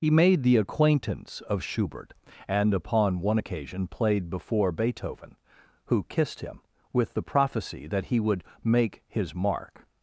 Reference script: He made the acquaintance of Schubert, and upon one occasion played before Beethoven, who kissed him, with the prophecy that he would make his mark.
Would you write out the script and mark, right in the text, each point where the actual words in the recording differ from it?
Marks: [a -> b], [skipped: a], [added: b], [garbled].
He made the acquaintance of Schubert, and upon one occasion played before Beethoven, who kissed him, with the prophecy that he would make his mark.